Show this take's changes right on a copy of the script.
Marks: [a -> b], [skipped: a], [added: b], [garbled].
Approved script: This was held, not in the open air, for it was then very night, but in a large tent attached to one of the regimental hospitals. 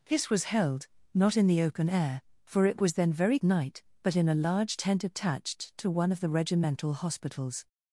This was held, not in the open air, for it was then very night, but in a large tent attached to one of the regimental hospitals.